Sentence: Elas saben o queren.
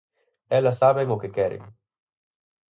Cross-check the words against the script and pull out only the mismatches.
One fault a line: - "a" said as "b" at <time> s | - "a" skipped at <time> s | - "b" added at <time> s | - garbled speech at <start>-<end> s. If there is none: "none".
- "que" added at 1.2 s